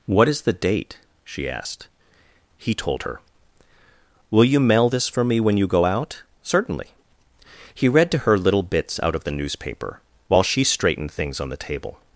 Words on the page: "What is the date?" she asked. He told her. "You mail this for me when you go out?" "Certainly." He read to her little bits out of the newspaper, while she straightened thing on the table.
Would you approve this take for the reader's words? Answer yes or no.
no